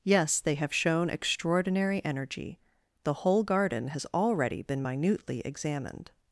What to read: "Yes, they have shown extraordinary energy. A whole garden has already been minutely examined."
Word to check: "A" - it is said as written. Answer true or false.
false